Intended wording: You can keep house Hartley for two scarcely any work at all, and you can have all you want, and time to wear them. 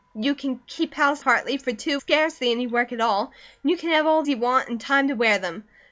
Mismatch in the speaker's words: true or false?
false